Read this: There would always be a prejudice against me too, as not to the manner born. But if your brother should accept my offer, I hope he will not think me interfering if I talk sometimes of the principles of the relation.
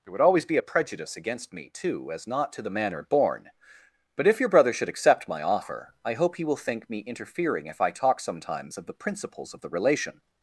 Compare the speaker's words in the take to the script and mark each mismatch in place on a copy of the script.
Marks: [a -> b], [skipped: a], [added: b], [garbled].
There would always be a prejudice against me too, as not to the manner born. But if your brother should accept my offer, I hope he will [skipped: not] think me interfering if I talk sometimes of the principles of the relation.